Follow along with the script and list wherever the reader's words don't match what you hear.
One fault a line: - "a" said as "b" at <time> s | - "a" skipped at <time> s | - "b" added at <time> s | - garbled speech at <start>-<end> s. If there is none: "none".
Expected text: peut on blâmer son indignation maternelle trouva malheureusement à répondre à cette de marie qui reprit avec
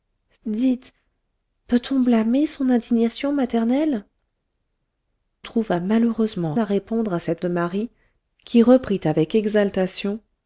none